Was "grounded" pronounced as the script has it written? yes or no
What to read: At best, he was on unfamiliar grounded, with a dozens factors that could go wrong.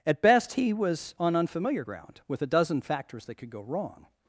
no